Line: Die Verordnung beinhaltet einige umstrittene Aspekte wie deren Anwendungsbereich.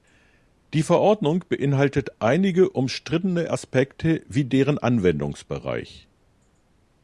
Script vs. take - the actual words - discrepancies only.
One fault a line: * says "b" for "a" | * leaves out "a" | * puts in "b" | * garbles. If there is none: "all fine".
all fine